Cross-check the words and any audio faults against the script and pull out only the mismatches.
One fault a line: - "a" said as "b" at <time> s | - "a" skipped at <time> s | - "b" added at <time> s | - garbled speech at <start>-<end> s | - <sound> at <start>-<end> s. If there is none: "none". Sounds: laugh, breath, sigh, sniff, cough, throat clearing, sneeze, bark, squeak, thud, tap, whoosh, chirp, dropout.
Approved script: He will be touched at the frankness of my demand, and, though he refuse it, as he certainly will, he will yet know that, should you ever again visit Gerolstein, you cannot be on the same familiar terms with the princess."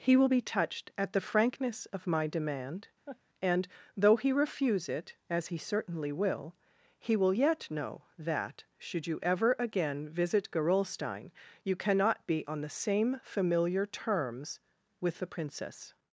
- laugh at 3.1-3.2 s